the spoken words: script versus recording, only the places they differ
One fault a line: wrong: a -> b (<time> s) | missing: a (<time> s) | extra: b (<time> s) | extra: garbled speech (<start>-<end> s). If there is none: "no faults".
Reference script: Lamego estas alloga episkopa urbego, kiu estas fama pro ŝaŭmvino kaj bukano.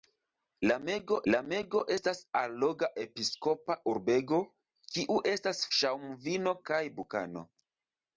extra: lamego (1.3 s)
missing: fama pro (5.6 s)